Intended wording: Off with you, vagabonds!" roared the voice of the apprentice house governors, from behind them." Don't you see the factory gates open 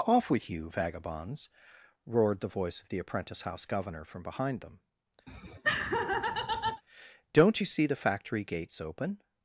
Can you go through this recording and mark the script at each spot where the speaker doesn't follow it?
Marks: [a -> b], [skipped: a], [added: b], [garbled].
Off with you, vagabonds!" roared the voice of the apprentice house [governors, -> governor] from behind them." Don't you see the factory gates open